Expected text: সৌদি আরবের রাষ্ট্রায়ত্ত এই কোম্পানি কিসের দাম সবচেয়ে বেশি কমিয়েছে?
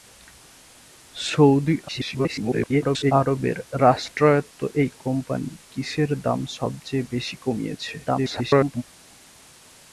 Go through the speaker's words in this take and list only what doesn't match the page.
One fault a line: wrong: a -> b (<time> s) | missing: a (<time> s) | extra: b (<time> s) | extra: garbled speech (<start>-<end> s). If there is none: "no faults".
extra: garbled speech (1.9-3.1 s)
extra: garbled speech (8.0-8.8 s)